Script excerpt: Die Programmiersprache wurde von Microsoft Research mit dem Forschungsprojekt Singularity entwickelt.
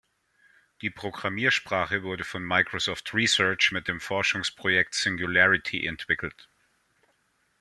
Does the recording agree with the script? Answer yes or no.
yes